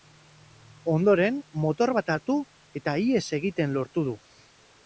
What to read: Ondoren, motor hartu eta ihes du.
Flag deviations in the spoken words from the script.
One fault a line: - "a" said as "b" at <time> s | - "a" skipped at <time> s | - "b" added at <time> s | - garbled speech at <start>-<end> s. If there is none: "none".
- "bat" added at 2.0 s
- "egiten lortu" added at 3.4 s